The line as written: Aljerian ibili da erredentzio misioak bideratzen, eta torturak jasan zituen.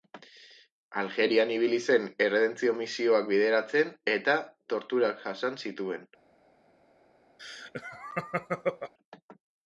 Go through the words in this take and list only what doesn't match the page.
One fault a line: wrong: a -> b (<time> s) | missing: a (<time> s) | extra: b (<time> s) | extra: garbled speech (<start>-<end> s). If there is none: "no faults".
wrong: da -> zen (1.9 s)